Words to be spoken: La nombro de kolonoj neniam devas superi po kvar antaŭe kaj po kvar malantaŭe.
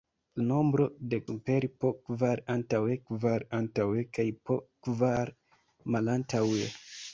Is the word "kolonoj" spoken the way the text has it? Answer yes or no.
no